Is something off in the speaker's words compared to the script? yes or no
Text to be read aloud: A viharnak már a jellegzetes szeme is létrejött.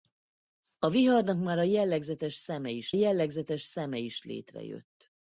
yes